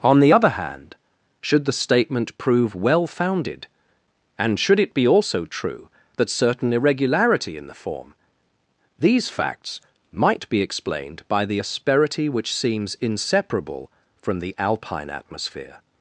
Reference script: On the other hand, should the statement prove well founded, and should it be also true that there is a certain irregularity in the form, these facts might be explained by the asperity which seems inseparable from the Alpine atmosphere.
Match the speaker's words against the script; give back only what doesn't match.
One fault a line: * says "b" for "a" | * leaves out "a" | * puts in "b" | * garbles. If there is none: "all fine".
* leaves out "there is a"